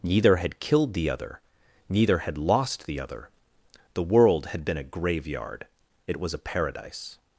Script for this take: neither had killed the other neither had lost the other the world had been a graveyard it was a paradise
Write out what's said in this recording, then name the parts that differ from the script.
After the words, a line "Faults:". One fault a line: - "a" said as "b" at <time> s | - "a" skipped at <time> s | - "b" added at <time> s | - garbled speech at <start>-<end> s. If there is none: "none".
neither had killed the other neither had lost the other the world had been a graveyard it was a paradise
Faults:
none